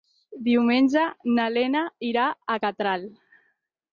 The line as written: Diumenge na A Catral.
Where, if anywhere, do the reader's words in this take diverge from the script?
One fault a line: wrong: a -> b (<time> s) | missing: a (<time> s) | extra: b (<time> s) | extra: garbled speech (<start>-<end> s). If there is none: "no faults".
extra: Lena irà (1.6 s)